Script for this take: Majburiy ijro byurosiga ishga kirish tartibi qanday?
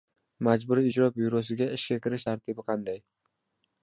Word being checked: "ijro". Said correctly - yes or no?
yes